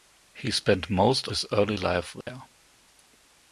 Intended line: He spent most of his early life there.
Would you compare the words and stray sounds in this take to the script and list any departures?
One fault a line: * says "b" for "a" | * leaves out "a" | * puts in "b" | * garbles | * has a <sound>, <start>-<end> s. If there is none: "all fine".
* leaves out "of"
* has a dropout, 2.2-2.3 s